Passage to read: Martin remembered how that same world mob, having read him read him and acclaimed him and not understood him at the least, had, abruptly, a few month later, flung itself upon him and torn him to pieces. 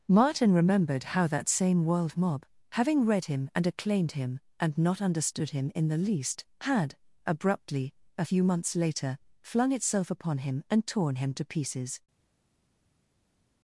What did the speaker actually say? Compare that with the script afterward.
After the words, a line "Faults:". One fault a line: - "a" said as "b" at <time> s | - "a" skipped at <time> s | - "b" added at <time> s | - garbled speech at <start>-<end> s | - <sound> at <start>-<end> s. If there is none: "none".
Martin remembered how that same world mob, having read him and acclaimed him and not understood him in the least, had, abruptly, a few months later, flung itself upon him and torn him to pieces.
Faults:
- "read him" skipped at 3.5 s
- "at" said as "in" at 5.7 s
- "month" said as "months" at 8.4 s